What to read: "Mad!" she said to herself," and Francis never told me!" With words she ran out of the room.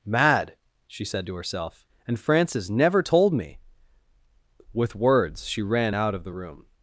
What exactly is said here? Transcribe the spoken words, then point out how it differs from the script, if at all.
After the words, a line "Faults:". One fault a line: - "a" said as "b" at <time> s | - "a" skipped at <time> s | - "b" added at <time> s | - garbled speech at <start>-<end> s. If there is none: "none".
"Mad!" she said to herself," and Francis never told me!" With words she ran out of the room.
Faults:
none